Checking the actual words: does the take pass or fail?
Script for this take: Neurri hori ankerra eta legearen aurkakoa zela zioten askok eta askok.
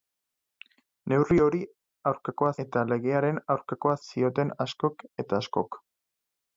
fail